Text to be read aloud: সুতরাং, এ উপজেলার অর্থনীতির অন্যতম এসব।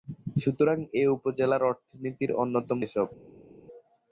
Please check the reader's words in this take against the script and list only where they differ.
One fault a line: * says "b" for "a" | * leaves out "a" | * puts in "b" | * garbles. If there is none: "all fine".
all fine